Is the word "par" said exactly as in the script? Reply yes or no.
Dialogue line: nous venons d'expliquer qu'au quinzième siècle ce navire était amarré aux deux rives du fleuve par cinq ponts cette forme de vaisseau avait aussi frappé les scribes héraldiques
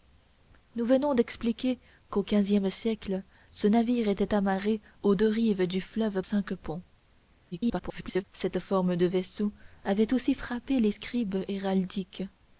no